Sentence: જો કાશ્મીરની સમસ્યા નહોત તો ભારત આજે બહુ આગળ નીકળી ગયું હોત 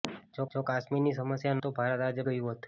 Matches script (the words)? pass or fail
fail